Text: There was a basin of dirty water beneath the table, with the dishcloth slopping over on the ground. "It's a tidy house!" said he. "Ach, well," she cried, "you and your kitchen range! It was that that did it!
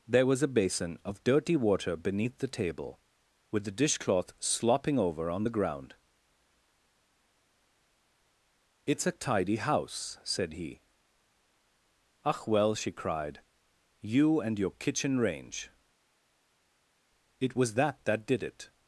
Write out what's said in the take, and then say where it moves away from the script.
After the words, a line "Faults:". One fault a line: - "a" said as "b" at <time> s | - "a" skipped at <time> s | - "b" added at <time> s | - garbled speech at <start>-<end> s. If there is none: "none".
There was a basin of dirty water beneath the table, with the dishcloth slopping over on the ground. "It's a tidy house!" said he. "Ach, well," she cried, "you and your kitchen range! It was that that did it!
Faults:
none